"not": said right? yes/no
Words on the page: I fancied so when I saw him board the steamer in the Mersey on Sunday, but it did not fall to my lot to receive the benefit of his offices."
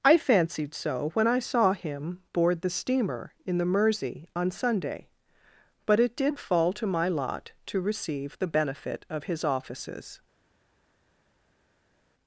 no